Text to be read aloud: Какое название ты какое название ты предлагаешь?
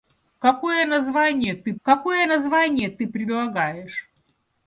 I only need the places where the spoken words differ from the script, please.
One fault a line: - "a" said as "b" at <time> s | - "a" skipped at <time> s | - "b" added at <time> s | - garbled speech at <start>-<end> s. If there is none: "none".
none